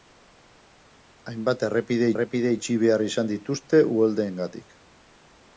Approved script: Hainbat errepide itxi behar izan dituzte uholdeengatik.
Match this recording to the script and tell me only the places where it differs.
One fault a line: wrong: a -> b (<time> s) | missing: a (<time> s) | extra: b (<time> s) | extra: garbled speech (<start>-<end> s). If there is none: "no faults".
extra: errepide (2.1 s)